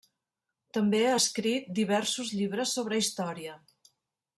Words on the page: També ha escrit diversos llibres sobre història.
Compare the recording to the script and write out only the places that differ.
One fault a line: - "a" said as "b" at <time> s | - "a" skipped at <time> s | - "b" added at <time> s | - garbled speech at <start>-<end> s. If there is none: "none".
none